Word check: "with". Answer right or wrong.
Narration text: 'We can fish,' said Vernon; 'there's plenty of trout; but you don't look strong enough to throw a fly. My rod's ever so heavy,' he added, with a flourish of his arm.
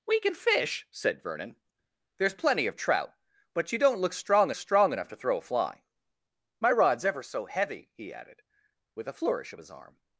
right